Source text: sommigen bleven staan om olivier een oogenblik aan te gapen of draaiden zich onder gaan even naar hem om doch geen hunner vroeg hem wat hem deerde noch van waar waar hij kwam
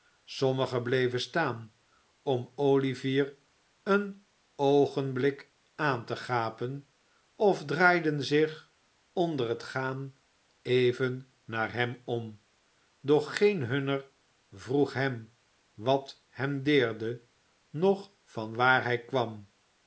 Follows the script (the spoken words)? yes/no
no